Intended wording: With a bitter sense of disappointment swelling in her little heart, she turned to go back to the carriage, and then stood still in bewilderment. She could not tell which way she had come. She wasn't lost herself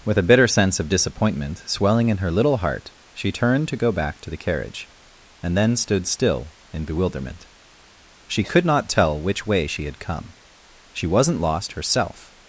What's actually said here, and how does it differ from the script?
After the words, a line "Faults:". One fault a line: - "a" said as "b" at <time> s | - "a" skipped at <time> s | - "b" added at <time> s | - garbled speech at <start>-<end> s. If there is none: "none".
With a bitter sense of disappointment swelling in her little heart, she turned to go back to the carriage, and then stood still in bewilderment. She could not tell which way she had come. She wasn't lost herself
Faults:
none